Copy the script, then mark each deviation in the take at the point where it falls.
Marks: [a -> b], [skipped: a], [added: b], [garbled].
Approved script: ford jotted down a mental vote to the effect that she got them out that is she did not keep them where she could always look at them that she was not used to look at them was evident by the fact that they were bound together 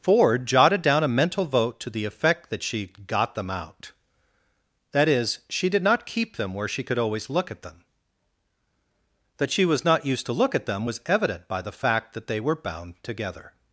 ford jotted down a mental vote to the effect that she got them out that is she did not keep them where she could always look at them that she was not used to look at them was evident by the fact that they were bound together